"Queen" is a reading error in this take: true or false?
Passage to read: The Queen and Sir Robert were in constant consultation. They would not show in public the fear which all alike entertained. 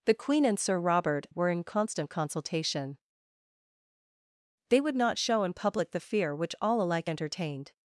false